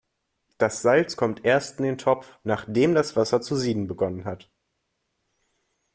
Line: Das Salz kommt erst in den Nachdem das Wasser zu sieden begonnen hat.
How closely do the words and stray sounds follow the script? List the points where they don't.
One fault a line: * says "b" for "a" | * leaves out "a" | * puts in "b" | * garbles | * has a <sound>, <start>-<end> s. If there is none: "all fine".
* puts in "Topf"